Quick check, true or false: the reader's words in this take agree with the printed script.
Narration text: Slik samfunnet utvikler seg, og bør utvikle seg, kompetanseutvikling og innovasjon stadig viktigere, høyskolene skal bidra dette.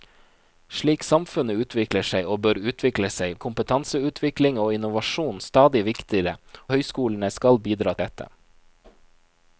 true